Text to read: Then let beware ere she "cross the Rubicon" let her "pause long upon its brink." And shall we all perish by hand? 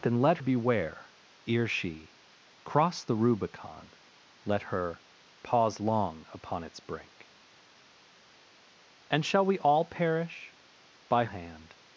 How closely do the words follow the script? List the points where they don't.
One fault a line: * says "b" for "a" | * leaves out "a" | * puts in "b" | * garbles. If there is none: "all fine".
all fine